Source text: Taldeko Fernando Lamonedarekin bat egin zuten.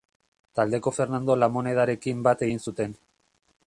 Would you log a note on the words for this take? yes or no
no